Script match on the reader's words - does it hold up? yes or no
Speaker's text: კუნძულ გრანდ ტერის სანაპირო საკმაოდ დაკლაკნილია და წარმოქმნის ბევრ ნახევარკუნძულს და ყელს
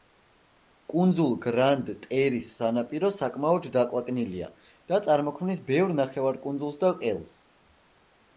yes